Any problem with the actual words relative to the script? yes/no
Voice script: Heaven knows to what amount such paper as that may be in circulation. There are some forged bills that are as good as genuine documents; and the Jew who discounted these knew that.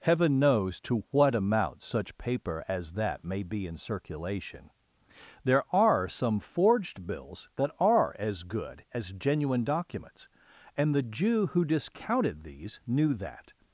no